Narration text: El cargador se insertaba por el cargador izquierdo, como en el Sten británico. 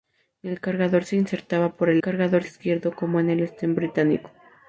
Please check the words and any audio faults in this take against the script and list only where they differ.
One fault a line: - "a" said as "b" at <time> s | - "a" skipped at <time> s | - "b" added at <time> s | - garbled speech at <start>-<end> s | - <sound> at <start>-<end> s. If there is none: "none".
none